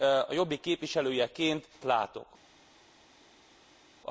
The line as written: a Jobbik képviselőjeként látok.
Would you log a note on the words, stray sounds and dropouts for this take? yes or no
no